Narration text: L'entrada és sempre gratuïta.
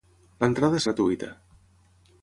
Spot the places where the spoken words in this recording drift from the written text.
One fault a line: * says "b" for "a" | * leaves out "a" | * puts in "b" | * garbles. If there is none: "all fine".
* leaves out "sempre"